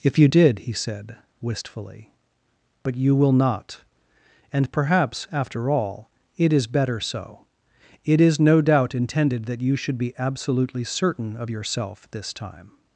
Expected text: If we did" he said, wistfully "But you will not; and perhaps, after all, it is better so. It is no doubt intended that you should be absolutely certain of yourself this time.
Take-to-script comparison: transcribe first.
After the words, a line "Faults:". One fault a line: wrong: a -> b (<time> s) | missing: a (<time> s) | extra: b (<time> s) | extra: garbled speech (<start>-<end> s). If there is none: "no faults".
If you did" he said, wistfully "But you will not; and perhaps, after all, it is better so. It is no doubt intended that you should be absolutely certain of yourself this time.
Faults:
wrong: we -> you (0.2 s)